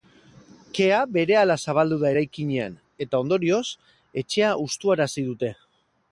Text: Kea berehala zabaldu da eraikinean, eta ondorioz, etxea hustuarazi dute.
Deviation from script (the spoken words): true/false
false